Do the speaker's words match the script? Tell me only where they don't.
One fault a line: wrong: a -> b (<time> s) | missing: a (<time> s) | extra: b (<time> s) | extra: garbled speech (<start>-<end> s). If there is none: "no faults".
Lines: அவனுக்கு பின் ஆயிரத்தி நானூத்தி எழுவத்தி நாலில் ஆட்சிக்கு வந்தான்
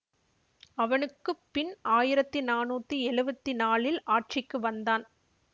no faults